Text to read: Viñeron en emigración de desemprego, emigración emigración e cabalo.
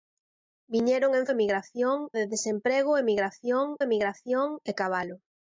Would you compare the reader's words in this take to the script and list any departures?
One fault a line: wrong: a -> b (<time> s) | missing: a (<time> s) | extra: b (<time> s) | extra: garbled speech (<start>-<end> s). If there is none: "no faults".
no faults